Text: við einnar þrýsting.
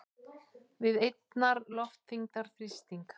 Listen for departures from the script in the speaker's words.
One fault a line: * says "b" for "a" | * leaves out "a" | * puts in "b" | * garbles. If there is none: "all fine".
* puts in "loftþyngdar"